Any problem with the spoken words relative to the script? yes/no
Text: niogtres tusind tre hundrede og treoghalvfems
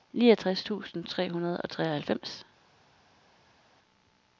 no